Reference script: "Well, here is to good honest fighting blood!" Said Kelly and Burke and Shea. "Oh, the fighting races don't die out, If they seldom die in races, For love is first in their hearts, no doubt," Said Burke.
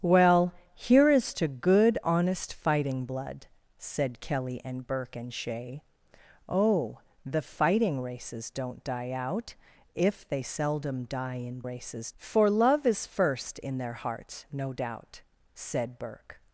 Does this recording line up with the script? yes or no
yes